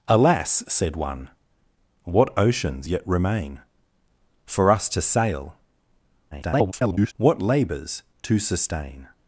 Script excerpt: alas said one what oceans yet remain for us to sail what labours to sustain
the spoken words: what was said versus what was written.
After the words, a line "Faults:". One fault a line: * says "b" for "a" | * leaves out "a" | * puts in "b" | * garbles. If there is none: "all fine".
alas said one what oceans yet remain for us to sail [garbled] what labours to sustain
Faults:
* garbles